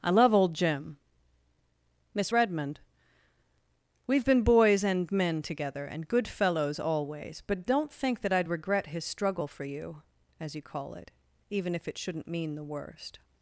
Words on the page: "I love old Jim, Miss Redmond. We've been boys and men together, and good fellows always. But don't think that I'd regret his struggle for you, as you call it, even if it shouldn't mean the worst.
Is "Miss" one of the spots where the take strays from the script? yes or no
no